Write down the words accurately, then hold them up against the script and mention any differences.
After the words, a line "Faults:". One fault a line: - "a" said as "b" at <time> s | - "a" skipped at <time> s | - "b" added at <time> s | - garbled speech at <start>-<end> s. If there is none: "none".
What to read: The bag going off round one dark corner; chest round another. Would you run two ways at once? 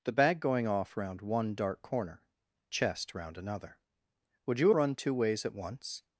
The bag going off round one dark corner; chest round another. Would you run two ways at once?
Faults:
none